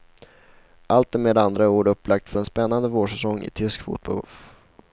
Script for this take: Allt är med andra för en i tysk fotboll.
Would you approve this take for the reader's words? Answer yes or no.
no